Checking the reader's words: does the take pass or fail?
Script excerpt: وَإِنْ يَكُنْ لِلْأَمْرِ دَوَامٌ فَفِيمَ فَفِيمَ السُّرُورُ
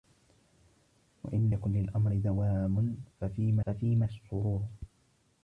pass